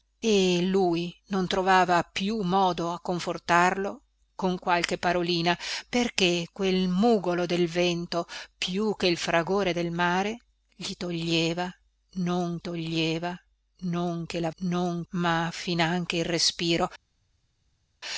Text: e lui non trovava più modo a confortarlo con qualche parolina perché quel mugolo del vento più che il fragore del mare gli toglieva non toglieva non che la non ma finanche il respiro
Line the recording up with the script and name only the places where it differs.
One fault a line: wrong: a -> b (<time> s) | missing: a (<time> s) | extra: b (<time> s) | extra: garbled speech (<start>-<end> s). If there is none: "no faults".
no faults